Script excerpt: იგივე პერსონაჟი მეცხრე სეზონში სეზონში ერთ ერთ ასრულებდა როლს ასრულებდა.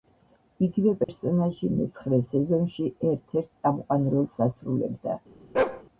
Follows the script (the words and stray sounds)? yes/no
no